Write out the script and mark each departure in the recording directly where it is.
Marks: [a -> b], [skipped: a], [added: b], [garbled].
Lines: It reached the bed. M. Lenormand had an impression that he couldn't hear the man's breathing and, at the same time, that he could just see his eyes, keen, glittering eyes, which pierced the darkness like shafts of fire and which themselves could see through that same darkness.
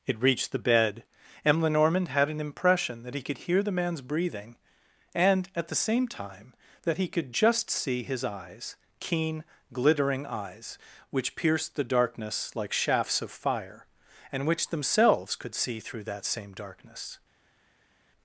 It reached the bed. M. Lenormand had an impression that he [couldn't -> could] hear the man's breathing and, at the same time, that he could just see his eyes, keen, glittering eyes, which pierced the darkness like shafts of fire and which themselves could see through that same darkness.